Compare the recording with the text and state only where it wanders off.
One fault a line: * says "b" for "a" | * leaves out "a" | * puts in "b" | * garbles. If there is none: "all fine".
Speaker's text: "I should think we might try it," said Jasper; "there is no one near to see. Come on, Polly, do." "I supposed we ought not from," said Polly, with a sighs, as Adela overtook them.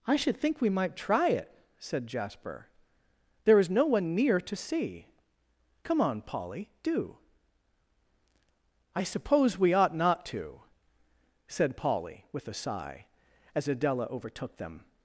* says "suppose" for "supposed"
* says "to" for "from"
* says "sigh" for "sighs"